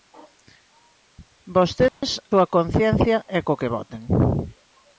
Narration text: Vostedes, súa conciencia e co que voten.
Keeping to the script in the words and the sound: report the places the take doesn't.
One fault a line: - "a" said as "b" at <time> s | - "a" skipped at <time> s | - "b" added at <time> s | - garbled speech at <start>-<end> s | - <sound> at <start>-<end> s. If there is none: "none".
- dropout at 1.9-2.0 s